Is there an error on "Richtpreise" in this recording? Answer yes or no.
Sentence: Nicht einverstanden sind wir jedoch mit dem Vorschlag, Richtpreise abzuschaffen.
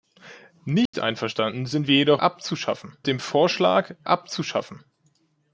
yes